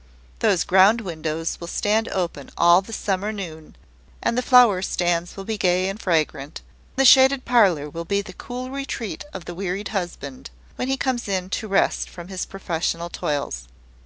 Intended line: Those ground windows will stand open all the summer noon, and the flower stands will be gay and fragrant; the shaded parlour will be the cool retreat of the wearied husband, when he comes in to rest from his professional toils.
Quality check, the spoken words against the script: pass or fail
pass